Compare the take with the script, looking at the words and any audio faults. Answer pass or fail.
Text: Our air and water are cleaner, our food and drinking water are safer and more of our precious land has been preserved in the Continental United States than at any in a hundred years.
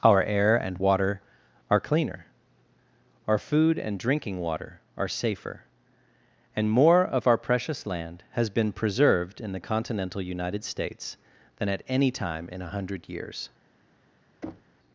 fail